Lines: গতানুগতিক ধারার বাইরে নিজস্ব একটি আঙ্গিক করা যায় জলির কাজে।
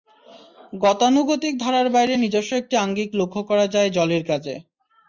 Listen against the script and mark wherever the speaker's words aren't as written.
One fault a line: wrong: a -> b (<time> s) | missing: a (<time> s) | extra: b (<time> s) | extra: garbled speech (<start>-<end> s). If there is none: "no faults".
extra: লক্ষ (3.2 s)